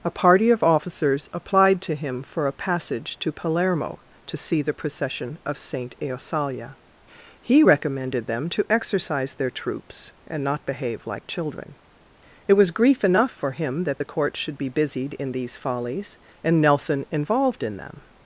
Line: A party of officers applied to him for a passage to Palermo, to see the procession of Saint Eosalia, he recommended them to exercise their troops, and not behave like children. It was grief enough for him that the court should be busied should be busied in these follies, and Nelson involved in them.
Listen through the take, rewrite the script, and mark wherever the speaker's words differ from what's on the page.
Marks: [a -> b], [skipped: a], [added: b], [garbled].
A party of officers applied to him for a passage to Palermo, to see the procession of Saint Eosalia, he recommended them to exercise their troops, and not behave like children. It was grief enough for him that the court should be busied [skipped: should be busied] in these follies, and Nelson involved in them.